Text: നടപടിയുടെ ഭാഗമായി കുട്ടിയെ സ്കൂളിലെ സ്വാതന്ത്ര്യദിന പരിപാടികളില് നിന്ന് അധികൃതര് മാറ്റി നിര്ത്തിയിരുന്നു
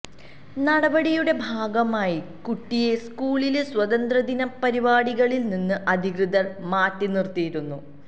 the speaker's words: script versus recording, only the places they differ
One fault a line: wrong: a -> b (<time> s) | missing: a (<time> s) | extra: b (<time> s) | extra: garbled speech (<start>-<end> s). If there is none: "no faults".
no faults